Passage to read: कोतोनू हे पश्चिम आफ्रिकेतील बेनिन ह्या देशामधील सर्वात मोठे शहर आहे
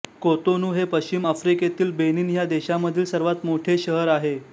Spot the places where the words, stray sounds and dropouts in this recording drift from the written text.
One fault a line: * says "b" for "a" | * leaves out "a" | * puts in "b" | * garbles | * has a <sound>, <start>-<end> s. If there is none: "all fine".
all fine